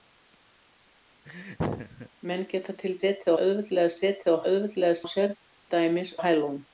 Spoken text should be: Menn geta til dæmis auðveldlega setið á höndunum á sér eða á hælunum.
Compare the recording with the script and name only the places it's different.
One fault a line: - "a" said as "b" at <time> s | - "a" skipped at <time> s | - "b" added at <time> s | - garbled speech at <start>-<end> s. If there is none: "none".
- "dæmis" said as "setið" at 3.0 s
- "höndunum" said as "auðveldlega" at 4.5 s
- "eða" said as "dæmis" at 5.7 s